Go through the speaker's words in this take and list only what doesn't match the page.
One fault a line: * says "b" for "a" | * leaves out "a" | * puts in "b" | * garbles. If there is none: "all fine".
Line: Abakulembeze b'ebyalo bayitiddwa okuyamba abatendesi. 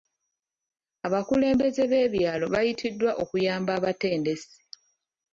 all fine